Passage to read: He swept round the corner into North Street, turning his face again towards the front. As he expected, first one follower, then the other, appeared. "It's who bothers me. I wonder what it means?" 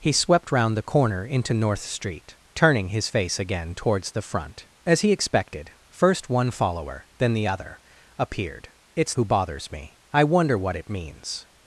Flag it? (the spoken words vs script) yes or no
no